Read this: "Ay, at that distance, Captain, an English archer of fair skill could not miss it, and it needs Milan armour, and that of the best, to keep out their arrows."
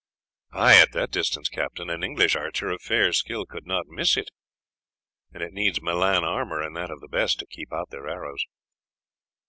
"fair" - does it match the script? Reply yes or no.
yes